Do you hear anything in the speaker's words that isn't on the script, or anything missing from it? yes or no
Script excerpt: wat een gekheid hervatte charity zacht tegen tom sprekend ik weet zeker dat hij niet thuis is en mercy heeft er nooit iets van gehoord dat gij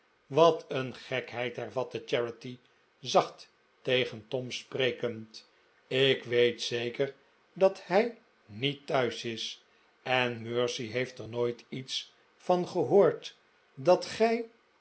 no